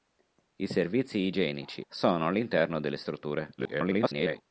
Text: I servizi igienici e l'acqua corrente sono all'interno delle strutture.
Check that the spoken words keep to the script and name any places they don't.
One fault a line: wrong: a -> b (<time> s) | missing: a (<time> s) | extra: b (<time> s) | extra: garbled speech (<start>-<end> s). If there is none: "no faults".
missing: e l'acqua corrente (1.8 s)
extra: garbled speech (3.6-4.4 s)